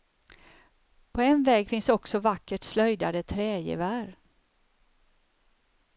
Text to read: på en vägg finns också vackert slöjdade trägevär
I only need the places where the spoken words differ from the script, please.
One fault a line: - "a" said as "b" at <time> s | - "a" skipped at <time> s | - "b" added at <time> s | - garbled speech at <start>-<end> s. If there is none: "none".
none